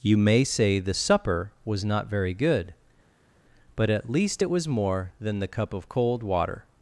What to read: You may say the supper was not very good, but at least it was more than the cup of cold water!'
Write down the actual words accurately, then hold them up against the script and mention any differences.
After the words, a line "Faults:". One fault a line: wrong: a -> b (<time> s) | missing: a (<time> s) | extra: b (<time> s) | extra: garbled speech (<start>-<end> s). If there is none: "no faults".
You may say the supper was not very good, but at least it was more than the cup of cold water!'
Faults:
no faults